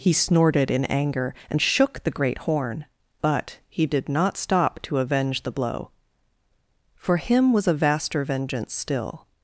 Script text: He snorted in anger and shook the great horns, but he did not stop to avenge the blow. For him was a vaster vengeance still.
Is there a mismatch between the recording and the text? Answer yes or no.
yes